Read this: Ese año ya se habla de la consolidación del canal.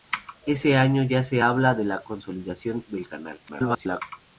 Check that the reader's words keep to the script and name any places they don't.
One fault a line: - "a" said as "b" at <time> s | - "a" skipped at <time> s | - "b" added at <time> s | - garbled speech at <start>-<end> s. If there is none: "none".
- garbled speech at 3.5-4.0 s